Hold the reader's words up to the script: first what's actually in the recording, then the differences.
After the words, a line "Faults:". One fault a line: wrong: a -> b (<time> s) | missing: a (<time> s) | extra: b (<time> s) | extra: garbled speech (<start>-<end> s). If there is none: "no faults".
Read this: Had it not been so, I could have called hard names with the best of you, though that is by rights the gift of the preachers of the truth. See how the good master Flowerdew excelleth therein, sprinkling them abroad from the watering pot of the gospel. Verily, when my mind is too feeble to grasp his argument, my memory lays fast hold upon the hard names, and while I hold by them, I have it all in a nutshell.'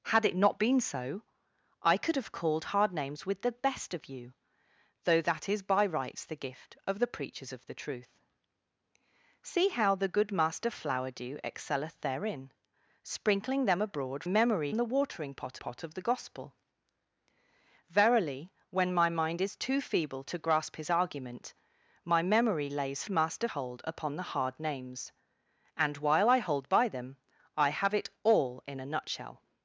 Had it not been so, I could have called hard names with the best of you, though that is by rights the gift of the preachers of the truth. See how the good master Flowerdew excelleth therein, sprinkling them abroad memory the watering pot pot of the gospel. Verily, when my mind is too feeble to grasp his argument, my memory lays master hold upon the hard names, and while I hold by them, I have it all in a nutshell.'
Faults:
wrong: from -> memory (14.3 s)
extra: pot (15.6 s)
wrong: fast -> master (23.1 s)